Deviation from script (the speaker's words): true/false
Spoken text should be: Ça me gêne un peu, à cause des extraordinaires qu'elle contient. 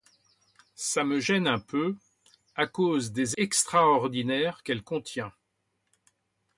false